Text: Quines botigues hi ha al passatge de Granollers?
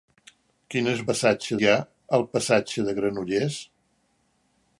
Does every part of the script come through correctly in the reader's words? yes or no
no